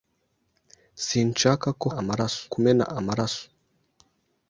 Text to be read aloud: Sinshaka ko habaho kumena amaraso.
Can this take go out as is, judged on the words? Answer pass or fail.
fail